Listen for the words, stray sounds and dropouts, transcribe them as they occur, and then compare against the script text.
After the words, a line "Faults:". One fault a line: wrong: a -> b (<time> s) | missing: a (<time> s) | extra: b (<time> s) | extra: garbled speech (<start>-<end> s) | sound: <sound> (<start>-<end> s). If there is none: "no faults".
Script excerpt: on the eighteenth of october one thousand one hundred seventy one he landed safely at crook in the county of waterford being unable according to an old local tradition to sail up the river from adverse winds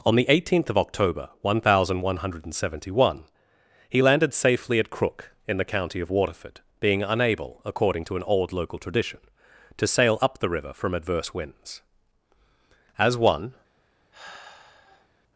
on the eighteenth of october one thousand one hundred seventy one he landed safely at crook in the county of waterford being unable according to an old local tradition to sail up the river from adverse winds as one
Faults:
extra: as one (13.0 s)
sound: sigh (14.1-15.1 s)